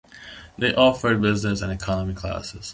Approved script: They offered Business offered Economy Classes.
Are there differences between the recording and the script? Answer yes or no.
yes